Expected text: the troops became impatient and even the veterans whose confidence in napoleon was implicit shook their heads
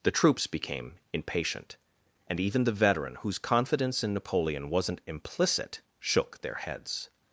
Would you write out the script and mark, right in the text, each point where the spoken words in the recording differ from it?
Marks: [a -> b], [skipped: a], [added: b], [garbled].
the troops became impatient and even the [veterans -> veteran] whose confidence in napoleon [was -> wasn't] implicit shook their heads